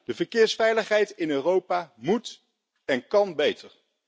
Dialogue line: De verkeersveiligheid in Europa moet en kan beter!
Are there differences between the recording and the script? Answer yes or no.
no